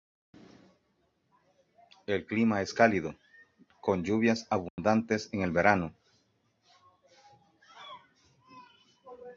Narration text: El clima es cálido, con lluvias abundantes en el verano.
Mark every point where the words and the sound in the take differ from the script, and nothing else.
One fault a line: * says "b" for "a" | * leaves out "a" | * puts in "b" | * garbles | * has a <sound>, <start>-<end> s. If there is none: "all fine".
* has a dropout, 4.7-4.8 s